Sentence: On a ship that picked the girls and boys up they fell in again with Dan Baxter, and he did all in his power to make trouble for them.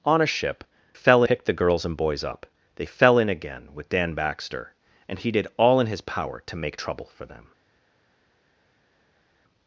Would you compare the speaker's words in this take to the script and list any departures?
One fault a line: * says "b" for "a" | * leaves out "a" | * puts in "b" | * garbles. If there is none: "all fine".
* says "fell" for "that"